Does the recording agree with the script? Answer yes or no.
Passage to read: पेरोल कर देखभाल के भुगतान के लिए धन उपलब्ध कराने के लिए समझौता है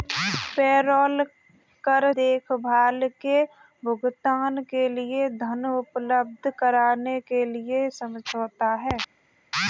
yes